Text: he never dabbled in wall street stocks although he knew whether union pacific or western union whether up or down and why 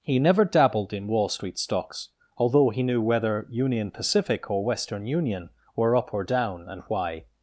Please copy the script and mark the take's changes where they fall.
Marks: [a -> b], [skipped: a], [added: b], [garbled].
he never dabbled in wall street stocks although he knew whether union pacific or western union [whether -> were] up or down and why